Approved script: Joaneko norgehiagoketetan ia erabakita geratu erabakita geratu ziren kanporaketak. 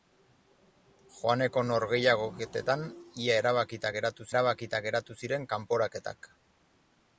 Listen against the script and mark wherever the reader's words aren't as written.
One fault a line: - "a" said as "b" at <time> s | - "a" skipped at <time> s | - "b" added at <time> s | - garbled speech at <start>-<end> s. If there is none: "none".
none